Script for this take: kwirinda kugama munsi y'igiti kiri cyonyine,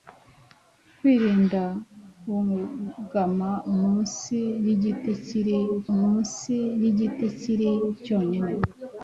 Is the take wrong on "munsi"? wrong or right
right